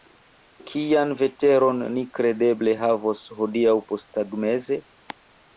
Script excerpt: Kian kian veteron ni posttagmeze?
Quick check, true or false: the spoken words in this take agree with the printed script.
false